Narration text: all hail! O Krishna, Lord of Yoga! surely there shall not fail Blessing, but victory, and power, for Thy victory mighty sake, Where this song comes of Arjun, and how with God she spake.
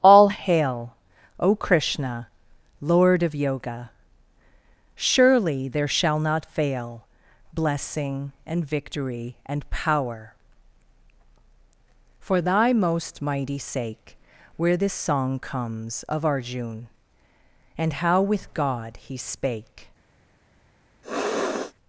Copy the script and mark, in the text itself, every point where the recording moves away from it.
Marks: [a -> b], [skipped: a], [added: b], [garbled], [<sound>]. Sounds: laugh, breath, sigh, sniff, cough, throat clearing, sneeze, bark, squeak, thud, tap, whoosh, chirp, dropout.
all hail! O Krishna, Lord of Yoga! surely there shall not fail Blessing, [but -> and] victory, and power, for Thy [victory -> most] mighty sake, Where this song comes of Arjun, and how with God [she -> he] spake. [sniff]